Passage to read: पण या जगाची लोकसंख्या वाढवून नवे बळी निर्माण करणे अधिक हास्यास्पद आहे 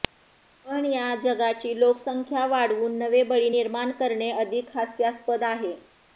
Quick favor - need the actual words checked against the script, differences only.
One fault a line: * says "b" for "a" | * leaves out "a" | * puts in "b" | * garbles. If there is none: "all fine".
all fine